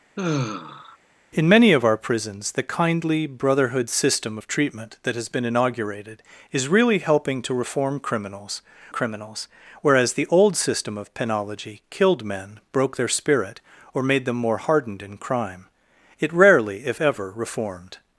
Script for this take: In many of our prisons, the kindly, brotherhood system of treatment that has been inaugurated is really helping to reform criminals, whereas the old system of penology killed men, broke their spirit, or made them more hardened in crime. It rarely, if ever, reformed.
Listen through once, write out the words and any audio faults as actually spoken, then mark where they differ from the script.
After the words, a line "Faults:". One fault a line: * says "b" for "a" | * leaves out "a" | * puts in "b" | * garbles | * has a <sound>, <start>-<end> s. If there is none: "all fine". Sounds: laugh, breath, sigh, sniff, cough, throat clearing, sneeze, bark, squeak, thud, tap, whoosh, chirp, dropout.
In many of our prisons, the kindly, brotherhood system of treatment that has been inaugurated is really helping to reform criminals criminals, whereas the old system of penology killed men, broke their spirit, or made them more hardened in crime. It rarely, if ever, reformed.
Faults:
* has a sigh, 0.2-1.0 s
* puts in "criminals"